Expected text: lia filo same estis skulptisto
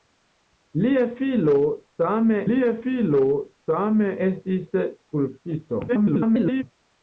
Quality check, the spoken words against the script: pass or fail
fail